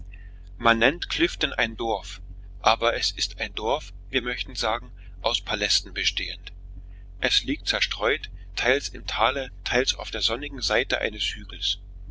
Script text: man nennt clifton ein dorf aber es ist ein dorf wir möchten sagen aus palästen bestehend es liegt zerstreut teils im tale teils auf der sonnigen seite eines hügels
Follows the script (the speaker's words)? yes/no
yes